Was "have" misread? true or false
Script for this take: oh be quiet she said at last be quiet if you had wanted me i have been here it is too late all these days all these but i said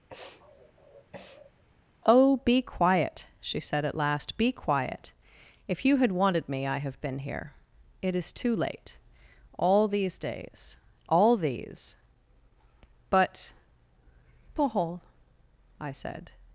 false